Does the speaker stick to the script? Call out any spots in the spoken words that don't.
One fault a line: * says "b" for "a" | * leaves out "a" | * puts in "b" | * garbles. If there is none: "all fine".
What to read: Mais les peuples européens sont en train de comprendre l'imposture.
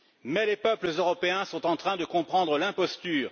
all fine